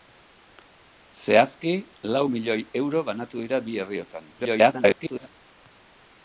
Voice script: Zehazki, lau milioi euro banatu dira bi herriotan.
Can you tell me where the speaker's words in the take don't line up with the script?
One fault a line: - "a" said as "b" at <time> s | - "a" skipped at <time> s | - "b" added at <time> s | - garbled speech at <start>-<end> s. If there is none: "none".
- garbled speech at 4.4-5.3 s